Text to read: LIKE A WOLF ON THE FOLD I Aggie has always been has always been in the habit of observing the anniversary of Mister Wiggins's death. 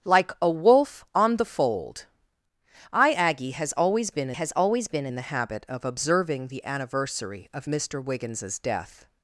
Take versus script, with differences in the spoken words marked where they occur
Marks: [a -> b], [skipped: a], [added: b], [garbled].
LIKE A WOLF ON THE FOLD I Aggie has always been has always been in the habit of observing the anniversary of Mister Wiggins's death.